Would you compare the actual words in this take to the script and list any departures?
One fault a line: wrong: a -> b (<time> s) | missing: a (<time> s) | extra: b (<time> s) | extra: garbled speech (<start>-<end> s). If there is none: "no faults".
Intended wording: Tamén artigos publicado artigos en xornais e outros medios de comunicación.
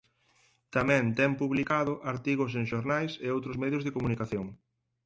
wrong: artigos -> ten (1.2 s)